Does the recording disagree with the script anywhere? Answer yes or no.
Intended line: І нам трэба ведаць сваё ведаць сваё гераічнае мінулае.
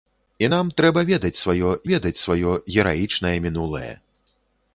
no